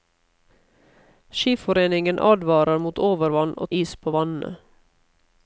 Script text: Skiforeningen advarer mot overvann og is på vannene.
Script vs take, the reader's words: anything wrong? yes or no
no